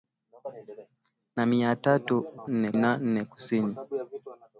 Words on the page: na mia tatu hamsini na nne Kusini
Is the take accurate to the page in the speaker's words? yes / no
no